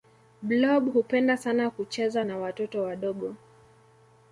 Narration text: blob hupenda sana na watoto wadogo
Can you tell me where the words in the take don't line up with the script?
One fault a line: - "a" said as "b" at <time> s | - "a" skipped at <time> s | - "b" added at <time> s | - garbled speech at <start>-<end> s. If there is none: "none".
- "kucheza" added at 1.7 s